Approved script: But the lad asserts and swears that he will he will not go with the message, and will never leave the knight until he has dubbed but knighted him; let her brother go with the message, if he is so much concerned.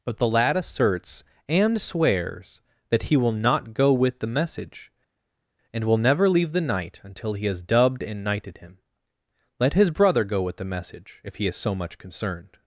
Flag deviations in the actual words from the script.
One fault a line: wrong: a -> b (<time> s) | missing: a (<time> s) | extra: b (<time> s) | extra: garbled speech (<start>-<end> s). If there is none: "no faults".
missing: he will (3.3 s)
wrong: but -> and (8.0 s)
wrong: her -> his (9.7 s)